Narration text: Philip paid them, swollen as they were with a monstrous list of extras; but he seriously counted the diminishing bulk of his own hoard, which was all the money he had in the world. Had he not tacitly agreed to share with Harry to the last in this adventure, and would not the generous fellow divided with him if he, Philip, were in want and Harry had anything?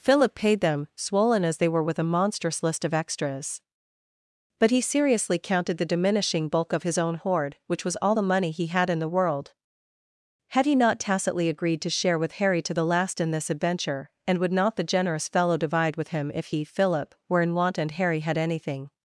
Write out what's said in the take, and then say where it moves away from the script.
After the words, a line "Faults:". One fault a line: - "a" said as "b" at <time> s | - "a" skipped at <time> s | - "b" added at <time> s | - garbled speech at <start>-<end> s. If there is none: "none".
Philip paid them, swollen as they were with a monstrous list of extras; but he seriously counted the diminishing bulk of his own hoard, which was all the money he had in the world. Had he not tacitly agreed to share with Harry to the last in this adventure, and would not the generous fellow divide with him if he, Philip, were in want and Harry had anything?
Faults:
- "divided" said as "divide" at 15.6 s